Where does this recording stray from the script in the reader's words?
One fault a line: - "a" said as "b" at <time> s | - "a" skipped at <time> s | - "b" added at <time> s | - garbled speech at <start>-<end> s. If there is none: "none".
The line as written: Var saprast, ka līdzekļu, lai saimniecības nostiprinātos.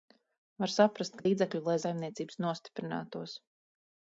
none